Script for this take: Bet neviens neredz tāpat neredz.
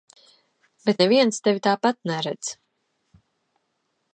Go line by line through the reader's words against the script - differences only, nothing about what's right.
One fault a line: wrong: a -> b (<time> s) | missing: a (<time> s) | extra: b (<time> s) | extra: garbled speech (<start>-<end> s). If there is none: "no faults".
wrong: neredz -> tevi (1.5 s)